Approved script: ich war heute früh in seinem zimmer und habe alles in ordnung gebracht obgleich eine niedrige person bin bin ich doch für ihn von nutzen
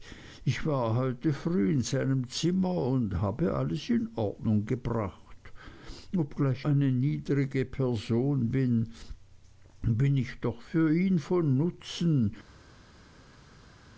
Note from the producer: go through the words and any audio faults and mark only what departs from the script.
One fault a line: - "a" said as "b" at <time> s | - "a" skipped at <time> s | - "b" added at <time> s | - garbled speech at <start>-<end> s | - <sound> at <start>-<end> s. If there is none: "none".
none